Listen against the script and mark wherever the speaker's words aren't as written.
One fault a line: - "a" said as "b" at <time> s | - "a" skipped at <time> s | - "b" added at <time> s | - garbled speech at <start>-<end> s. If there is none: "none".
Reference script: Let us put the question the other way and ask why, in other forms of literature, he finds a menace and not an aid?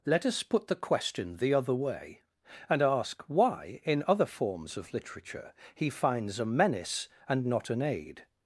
none